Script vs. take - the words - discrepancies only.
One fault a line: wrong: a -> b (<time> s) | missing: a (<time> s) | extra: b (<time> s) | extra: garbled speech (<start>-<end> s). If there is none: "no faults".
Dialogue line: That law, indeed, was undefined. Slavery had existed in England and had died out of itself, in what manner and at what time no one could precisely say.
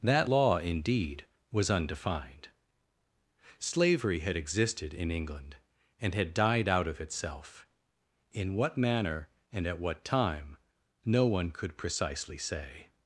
no faults